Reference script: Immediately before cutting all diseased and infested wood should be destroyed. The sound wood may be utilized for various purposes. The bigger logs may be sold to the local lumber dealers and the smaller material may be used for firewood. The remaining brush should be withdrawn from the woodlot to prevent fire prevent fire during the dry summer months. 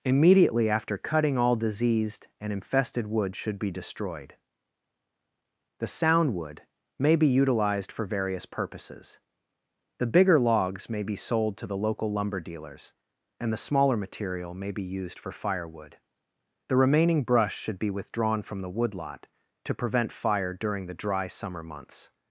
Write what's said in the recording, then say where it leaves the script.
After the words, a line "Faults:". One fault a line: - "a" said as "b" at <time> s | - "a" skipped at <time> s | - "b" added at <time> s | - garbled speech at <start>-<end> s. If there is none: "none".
Immediately after cutting all diseased and infested wood should be destroyed. The sound wood may be utilized for various purposes. The bigger logs may be sold to the local lumber dealers and the smaller material may be used for firewood. The remaining brush should be withdrawn from the woodlot to prevent fire during the dry summer months.
Faults:
- "before" said as "after" at 0.7 s
- "prevent fire" skipped at 20.5 s